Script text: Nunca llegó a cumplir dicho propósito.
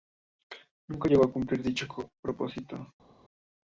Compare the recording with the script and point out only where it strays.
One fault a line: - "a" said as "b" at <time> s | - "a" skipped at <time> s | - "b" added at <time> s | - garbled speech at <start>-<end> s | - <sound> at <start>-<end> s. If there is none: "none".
none